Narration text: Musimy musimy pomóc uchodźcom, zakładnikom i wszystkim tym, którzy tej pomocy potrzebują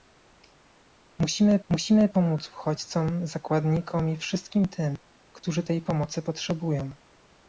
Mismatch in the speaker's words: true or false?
false